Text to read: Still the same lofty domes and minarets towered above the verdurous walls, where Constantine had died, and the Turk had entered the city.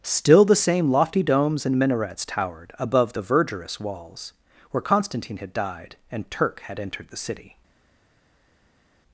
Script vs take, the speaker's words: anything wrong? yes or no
yes